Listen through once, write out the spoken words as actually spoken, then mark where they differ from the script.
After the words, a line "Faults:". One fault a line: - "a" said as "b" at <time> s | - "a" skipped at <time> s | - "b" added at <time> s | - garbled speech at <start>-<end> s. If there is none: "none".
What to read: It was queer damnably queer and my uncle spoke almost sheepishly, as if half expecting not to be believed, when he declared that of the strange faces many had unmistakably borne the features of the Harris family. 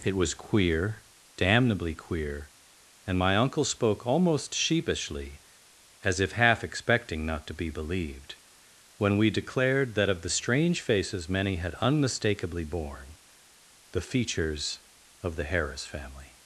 It was queer damnably queer and my uncle spoke almost sheepishly, as if half expecting not to be believed, when we declared that of the strange faces many had unmistakably borne the features of the Harris family.
Faults:
- "he" said as "we" at 9.2 s